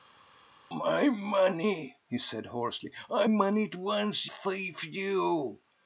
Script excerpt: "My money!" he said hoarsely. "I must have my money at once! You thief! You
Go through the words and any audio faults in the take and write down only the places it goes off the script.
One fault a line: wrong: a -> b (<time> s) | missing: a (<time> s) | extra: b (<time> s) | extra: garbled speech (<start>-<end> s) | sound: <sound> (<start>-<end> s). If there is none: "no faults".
missing: must have my (3.3 s)
missing: You (4.3 s)